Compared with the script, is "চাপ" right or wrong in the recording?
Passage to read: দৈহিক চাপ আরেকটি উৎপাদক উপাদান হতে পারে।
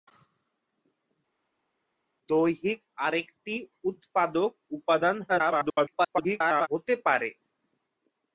wrong